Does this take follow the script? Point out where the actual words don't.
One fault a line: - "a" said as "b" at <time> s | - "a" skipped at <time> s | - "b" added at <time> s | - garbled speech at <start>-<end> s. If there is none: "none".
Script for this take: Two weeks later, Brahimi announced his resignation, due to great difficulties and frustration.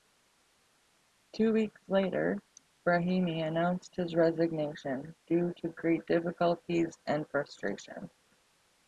none